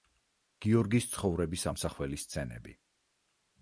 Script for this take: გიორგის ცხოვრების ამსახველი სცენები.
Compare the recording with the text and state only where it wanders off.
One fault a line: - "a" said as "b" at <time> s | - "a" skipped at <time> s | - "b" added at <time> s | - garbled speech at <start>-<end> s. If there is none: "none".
none